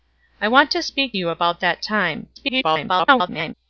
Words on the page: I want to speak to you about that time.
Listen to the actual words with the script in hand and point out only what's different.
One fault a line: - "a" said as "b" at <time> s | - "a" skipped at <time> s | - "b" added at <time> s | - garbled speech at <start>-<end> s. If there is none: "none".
- "to" skipped at 1.1 s
- garbled speech at 2.4-3.5 s